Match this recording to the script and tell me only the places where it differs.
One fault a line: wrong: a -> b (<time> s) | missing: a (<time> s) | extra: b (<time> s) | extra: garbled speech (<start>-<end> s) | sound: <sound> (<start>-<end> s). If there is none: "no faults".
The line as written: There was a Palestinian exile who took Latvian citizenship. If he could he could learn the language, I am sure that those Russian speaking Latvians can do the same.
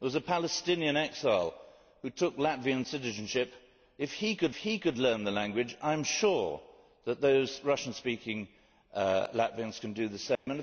sound: dropout (10.3-10.5 s)